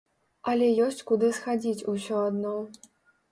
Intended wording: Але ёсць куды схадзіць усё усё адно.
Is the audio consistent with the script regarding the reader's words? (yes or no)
no